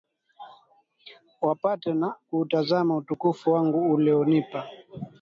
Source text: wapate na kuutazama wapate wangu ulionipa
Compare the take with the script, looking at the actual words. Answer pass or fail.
fail